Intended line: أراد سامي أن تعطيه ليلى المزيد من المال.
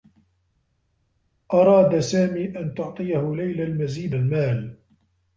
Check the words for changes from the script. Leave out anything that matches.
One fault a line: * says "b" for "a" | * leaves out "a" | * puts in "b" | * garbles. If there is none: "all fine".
* leaves out "من"